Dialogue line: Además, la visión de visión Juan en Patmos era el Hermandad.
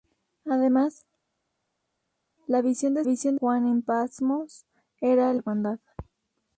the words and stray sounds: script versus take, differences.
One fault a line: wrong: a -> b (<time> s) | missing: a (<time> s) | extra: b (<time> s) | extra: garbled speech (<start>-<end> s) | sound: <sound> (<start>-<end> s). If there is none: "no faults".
no faults